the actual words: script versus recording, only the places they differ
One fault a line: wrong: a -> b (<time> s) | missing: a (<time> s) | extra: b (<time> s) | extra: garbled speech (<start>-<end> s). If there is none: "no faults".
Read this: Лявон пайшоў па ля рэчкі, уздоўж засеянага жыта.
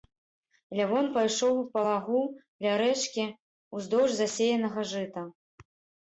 extra: лагу (1.9 s)